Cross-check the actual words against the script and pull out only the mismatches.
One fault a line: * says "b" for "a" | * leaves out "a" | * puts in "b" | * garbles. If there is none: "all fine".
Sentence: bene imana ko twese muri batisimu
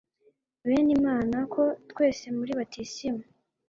all fine